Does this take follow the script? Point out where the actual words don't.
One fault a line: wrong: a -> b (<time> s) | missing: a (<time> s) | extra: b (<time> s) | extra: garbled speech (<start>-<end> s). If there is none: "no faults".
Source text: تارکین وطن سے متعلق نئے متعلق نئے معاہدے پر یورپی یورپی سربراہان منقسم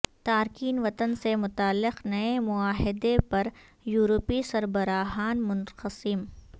missing: متعلق نئے (2.4 s)
missing: یورپی (4.4 s)